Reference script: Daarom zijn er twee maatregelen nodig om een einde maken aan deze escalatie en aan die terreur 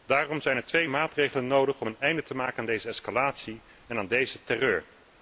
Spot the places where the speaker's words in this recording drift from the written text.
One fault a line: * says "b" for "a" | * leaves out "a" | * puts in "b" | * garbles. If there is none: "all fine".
* puts in "te"
* says "deze" for "die"